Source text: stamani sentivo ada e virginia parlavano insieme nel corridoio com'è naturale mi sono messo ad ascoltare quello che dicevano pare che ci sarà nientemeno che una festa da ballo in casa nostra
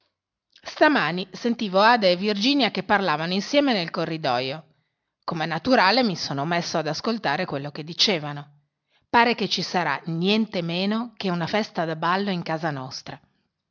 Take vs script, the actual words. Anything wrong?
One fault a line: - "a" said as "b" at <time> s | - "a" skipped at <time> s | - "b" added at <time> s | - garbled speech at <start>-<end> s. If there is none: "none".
- "che" added at 2.7 s